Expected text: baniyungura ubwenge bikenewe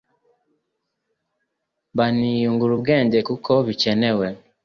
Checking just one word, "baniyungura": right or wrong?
right